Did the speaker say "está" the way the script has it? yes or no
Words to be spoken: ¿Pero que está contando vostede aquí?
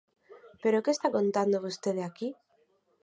yes